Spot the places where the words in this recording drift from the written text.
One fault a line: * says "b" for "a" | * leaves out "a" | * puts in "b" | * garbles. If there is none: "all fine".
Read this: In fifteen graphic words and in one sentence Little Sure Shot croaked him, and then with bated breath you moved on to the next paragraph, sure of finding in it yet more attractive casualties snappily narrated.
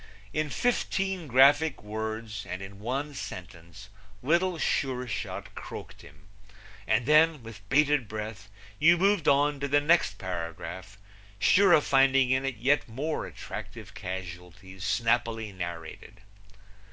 all fine